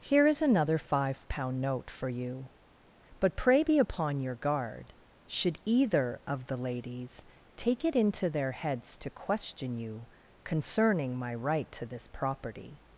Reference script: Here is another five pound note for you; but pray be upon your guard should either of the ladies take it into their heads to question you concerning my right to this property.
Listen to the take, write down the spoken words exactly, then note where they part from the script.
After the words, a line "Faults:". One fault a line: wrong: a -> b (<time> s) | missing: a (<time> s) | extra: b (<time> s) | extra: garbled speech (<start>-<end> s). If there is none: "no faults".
Here is another five pound note for you; but pray be upon your guard should either of the ladies take it into their heads to question you concerning my right to this property.
Faults:
no faults